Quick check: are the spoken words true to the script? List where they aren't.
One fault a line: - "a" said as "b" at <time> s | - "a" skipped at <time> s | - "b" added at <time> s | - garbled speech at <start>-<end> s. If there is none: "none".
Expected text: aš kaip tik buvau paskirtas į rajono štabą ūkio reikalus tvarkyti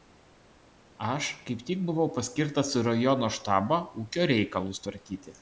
none